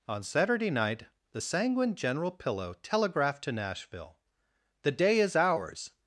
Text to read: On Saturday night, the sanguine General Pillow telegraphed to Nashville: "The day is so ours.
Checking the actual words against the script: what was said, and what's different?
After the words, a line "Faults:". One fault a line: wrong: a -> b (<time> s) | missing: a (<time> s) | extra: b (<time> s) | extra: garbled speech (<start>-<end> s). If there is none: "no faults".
On Saturday night, the sanguine General Pillow telegraphed to Nashville: "The day is ours.
Faults:
missing: so (5.3 s)